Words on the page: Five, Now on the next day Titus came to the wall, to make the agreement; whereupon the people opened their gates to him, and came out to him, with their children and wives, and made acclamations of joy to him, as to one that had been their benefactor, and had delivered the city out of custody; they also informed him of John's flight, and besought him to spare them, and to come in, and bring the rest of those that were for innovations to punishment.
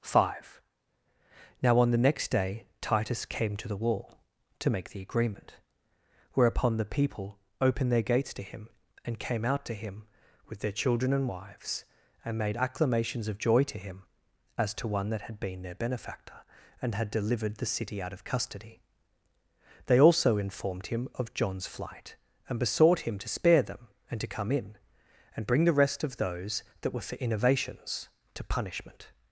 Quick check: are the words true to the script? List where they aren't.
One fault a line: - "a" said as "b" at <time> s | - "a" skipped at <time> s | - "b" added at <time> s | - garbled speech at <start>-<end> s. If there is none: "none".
none